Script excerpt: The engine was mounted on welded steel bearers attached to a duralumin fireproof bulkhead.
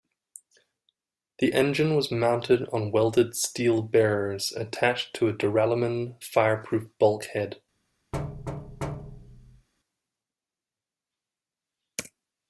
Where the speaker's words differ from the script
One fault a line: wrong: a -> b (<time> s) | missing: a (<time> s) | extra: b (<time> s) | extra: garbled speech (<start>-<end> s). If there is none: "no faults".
no faults